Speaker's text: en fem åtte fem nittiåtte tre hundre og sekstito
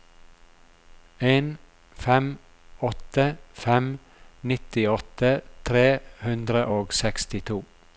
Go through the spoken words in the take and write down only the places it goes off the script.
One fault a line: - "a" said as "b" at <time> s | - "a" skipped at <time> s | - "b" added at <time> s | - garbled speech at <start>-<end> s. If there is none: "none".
none